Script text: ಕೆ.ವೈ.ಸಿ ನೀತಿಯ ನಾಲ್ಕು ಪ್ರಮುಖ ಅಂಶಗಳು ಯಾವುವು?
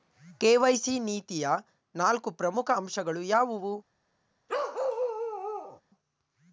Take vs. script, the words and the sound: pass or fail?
fail